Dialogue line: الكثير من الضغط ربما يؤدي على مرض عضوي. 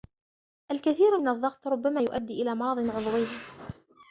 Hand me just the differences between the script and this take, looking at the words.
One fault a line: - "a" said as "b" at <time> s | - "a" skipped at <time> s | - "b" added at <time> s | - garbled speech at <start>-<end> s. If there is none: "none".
- "على" said as "إلى" at 2.4 s